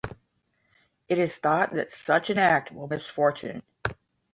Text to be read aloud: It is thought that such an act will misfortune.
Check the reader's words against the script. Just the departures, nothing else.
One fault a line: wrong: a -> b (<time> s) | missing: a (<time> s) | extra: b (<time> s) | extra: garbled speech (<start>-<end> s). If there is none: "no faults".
no faults